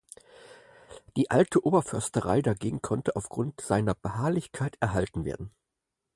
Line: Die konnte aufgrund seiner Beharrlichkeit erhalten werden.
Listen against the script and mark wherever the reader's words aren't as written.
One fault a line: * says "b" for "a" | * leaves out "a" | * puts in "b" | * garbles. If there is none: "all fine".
* puts in "alte Oberförsterei dagegen"